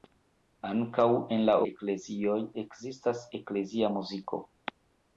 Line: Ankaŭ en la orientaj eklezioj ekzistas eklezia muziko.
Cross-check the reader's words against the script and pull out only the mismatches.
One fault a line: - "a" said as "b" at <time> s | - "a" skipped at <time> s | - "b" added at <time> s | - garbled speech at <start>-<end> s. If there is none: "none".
- "orientaj" skipped at 1.6 s